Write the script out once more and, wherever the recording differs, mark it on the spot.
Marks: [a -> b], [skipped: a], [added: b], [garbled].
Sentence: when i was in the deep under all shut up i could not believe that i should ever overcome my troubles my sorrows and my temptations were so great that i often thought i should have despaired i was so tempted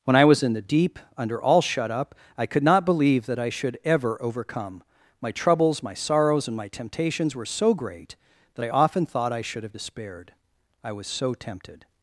when i was in the deep under all shut up i could not believe that i should ever overcome my troubles my sorrows and my temptations were so great that i often thought i should have despaired i was so tempted